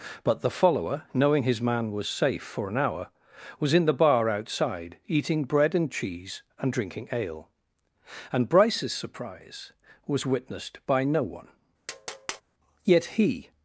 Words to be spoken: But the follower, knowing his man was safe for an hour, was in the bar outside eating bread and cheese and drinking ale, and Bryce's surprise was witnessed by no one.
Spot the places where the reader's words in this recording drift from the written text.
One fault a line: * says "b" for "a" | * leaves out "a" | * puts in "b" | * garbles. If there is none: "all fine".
* puts in "Yet he"